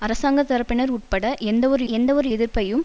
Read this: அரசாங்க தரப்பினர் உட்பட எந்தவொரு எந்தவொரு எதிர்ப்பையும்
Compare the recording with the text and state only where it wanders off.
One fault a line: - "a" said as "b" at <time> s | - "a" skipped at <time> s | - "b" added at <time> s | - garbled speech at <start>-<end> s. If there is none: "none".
none